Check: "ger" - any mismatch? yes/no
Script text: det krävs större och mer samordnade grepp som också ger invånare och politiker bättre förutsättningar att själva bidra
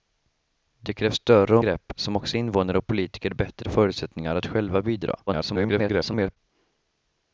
yes